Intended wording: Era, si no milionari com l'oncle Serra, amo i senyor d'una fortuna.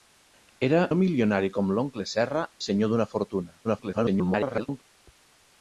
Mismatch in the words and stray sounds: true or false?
true